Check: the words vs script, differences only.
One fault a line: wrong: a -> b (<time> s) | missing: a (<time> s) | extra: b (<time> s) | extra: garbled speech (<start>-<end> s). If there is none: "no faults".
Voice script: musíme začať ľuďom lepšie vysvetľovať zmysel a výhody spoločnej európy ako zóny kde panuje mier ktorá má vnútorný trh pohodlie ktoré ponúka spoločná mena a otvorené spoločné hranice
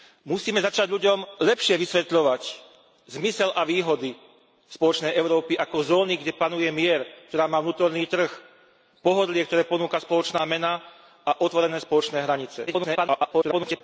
extra: garbled speech (12.7-13.8 s)